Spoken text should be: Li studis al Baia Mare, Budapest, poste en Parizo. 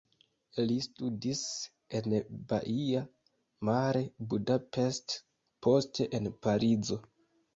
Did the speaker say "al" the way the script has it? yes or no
no